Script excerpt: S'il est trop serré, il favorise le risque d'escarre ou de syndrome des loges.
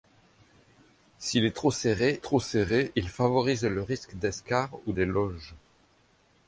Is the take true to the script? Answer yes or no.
no